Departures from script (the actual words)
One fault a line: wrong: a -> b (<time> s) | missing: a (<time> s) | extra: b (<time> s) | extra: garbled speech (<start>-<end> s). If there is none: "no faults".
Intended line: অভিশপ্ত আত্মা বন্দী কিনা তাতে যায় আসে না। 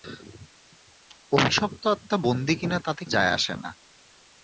no faults